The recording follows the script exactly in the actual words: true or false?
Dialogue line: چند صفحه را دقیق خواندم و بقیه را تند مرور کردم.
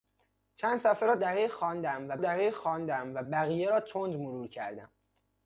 false